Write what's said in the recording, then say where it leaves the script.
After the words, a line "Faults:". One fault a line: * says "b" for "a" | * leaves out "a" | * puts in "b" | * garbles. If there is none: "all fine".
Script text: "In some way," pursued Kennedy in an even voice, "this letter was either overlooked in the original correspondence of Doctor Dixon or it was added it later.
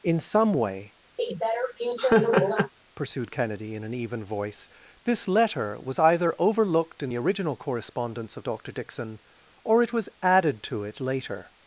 "In some way," pursued Kennedy in an even voice, "this letter was either overlooked in the original correspondence of Doctor Dixon or it was added to it later.
Faults:
* puts in "to"